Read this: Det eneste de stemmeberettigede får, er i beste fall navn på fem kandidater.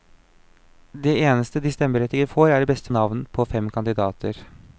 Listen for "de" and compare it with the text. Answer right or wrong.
right